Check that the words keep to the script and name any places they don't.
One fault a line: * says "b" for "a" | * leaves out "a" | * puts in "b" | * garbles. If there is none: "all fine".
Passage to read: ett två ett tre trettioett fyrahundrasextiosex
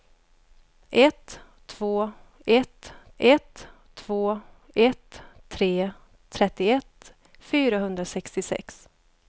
* puts in "ett två ett"